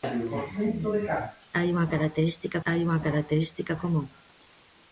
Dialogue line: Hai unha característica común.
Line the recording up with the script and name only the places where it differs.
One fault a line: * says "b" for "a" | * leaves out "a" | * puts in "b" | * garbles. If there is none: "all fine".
* puts in "hai unha característica"